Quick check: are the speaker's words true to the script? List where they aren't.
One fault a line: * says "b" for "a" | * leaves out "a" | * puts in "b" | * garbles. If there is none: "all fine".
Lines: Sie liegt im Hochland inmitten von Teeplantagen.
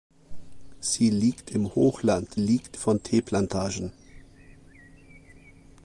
* says "liegt" for "inmitten"